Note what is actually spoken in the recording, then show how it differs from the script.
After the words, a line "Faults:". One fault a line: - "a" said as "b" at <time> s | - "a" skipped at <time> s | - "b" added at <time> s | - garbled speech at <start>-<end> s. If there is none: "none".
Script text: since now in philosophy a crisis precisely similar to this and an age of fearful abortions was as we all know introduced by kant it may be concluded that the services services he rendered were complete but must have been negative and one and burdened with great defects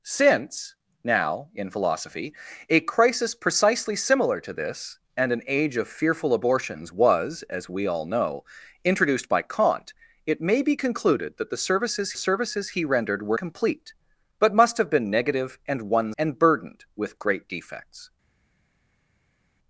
since now in philosophy a crisis precisely similar to this and an age of fearful abortions was as we all know introduced by kant it may be concluded that the services services he rendered were complete but must have been negative and one and burdened with great defects
Faults:
none